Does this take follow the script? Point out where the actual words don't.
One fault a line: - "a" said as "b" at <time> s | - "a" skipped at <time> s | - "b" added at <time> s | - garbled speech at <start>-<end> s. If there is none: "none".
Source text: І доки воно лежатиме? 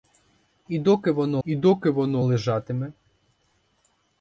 - "і доки воно" added at 1.4 s